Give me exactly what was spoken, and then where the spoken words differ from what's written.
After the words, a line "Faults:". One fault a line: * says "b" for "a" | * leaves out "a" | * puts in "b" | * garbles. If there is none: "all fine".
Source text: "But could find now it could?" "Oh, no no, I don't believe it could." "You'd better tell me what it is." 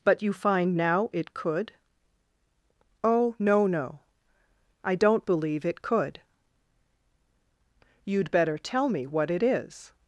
"But you find now it could?" "Oh, no no, I don't believe it could." "You'd better tell me what it is."
Faults:
* says "you" for "could"